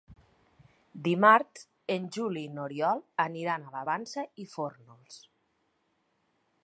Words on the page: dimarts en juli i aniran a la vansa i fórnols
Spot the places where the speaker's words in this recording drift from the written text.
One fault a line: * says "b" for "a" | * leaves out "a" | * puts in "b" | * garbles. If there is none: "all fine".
* puts in "n'oriol"